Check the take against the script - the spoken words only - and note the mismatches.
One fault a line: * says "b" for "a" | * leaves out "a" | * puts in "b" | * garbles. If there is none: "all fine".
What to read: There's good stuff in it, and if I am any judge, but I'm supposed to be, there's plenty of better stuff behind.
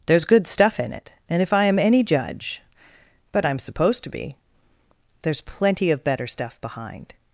all fine